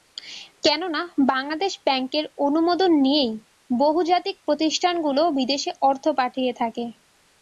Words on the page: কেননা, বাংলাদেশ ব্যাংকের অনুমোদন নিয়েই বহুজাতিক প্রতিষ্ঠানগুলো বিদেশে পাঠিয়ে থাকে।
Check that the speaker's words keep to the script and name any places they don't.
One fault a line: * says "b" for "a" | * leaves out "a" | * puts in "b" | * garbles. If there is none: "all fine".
* puts in "অর্থ"